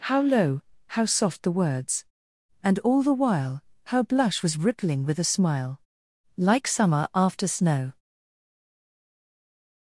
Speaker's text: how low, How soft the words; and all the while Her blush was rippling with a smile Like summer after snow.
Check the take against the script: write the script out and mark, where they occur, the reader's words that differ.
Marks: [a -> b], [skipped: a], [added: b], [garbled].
how low, How soft the words; and all the while Her blush was rippling with a smile Like summer after snow.